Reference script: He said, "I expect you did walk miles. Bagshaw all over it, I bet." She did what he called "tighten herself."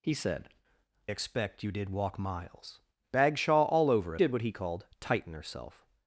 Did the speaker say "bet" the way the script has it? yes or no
no